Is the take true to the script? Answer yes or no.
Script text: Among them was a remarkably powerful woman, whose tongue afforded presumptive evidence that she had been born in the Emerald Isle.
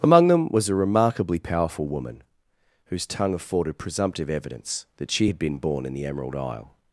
yes